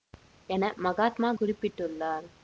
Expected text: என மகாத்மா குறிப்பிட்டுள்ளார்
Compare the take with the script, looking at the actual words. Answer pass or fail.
pass